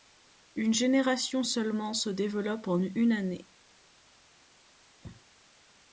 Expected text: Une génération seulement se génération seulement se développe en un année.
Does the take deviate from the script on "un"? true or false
true